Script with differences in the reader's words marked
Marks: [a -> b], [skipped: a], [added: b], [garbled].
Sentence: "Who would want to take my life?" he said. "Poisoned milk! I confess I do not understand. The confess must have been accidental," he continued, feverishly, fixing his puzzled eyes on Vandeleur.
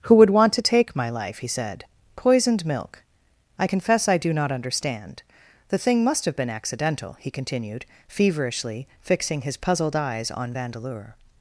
"Who would want to take my life?" he said. "Poisoned milk! I confess I do not understand. The [confess -> thing] must have been accidental," he continued, feverishly, fixing his puzzled eyes on Vandeleur.